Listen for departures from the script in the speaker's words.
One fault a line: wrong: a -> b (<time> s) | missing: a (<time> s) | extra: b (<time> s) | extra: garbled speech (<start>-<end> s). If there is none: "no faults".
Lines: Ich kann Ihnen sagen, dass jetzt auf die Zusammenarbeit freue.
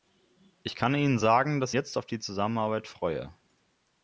no faults